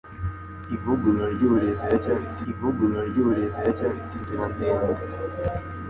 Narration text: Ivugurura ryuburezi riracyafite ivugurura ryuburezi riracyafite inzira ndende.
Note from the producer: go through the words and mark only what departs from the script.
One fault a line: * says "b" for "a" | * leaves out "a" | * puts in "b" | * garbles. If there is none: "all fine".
all fine